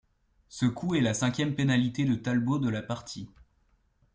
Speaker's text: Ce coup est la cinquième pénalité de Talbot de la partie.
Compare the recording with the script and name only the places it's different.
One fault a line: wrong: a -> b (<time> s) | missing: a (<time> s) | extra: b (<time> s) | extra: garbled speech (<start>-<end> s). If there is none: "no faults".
no faults